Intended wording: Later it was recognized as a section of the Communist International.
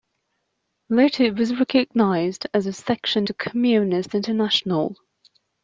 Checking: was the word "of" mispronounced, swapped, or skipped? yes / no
yes